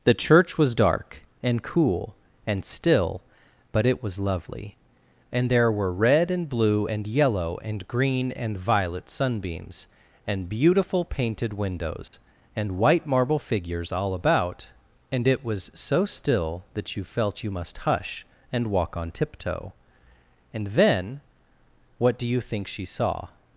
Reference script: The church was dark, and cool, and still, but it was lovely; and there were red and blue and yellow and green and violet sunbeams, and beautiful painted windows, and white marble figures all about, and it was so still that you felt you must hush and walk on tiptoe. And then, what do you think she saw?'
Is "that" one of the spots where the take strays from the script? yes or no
no